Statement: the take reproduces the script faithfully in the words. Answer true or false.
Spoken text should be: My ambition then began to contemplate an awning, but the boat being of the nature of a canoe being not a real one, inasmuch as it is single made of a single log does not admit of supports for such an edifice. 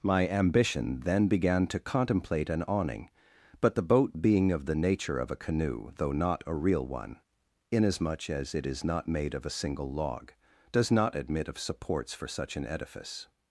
false